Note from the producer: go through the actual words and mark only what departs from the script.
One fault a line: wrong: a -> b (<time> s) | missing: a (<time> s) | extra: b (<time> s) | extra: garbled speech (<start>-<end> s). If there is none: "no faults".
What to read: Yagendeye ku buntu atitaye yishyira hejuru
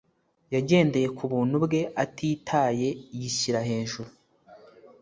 extra: bwe (1.6 s)